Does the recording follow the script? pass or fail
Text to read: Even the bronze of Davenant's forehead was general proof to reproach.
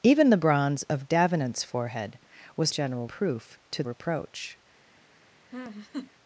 pass